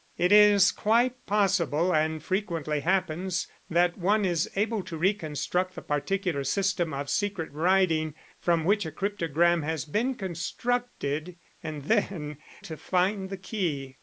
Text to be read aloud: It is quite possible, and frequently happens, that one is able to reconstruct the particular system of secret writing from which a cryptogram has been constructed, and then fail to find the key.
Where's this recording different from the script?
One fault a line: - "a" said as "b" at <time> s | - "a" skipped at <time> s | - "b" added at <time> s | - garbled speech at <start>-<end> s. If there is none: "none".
- "fail" skipped at 12.4 s